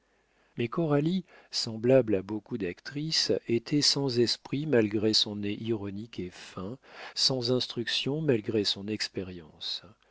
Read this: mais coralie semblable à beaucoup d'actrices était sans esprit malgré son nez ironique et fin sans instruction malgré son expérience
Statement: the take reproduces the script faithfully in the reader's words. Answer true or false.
true